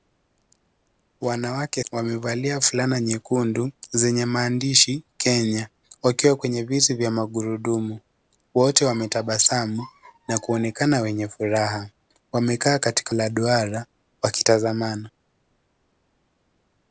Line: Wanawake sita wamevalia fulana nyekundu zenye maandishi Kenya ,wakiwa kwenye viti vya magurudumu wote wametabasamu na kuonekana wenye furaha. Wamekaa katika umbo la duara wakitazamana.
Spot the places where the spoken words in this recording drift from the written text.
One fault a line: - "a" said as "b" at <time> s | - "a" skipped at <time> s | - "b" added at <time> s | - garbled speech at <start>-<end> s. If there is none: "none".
- "sita" skipped at 1.8 s
- "umbo" skipped at 13.1 s